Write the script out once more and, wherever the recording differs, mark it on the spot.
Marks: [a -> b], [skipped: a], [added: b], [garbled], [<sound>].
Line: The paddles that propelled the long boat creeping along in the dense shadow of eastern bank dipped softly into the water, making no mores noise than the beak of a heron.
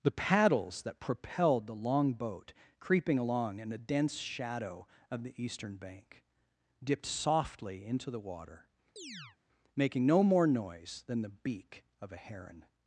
The paddles that propelled the long boat creeping along in the dense shadow of [added: the] eastern bank dipped softly into the water, [chirp] making no [mores -> more] noise than the beak of a heron.